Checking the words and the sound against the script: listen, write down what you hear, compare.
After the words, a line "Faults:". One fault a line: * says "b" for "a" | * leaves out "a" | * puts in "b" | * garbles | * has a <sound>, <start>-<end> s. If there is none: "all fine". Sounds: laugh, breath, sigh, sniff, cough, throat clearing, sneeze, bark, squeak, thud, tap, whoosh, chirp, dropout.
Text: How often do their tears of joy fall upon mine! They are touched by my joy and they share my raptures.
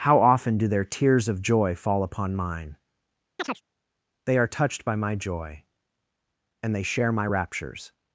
How often do their tears of joy fall upon mine! They are touched by my joy and they share my raptures.
Faults:
* has a chirp, 3.4-3.6 s